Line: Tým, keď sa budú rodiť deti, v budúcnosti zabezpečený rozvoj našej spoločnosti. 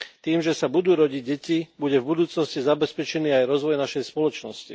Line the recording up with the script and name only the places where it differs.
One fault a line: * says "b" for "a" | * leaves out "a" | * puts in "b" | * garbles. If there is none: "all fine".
* says "že" for "keď"
* puts in "bude"
* puts in "aj"